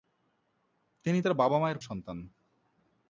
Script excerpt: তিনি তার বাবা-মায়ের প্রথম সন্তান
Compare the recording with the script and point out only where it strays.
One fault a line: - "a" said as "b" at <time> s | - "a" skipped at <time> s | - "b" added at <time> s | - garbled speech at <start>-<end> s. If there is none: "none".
- "প্রথম" skipped at 1.8 s